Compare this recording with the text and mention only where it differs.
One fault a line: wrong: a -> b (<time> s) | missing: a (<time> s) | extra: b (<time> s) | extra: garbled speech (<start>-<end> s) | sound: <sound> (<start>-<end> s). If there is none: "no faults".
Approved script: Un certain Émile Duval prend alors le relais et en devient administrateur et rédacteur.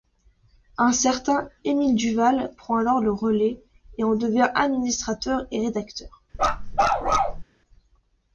sound: bark (6.3-7.4 s)